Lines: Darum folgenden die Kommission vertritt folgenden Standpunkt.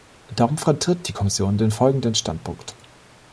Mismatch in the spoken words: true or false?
true